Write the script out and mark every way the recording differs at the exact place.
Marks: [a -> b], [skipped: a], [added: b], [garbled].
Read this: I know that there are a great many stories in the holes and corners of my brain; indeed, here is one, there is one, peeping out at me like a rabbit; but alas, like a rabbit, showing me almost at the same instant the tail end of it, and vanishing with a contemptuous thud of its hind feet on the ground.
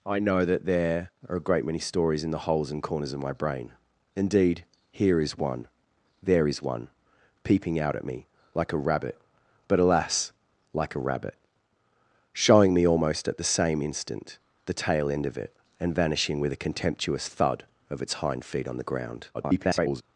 I know that there are a great many stories in the holes and corners of my brain; indeed, here is one, there is one, peeping out at me like a rabbit; but alas, like a rabbit, showing me almost at the same instant the tail end of it, and vanishing with a contemptuous thud of its hind feet on the ground. [garbled]